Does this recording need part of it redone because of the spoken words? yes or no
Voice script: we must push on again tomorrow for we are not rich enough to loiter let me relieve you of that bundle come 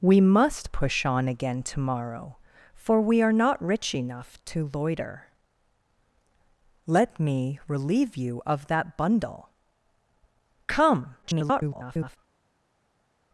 yes